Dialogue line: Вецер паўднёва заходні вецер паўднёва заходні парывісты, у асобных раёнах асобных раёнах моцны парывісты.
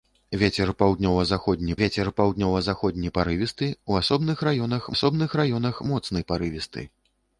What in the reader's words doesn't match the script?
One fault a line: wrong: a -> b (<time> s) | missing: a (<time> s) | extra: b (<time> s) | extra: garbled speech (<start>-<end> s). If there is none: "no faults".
no faults